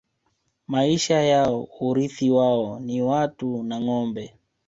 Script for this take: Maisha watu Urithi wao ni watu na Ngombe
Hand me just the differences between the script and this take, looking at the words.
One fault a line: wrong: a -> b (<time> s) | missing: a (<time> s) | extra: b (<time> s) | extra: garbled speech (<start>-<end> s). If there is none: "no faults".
wrong: watu -> yao (1.2 s)